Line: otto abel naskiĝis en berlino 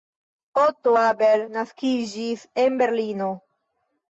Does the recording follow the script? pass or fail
pass